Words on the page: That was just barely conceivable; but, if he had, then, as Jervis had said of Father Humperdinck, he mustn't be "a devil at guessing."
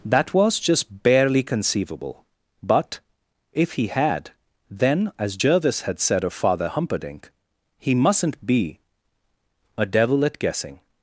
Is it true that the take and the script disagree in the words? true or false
false